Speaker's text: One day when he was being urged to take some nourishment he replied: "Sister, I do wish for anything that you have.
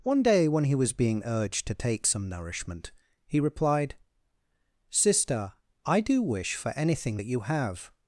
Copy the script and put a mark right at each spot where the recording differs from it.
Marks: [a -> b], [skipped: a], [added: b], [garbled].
One day when he was being urged to take some nourishment he replied: "Sister, I do wish for anything that you have.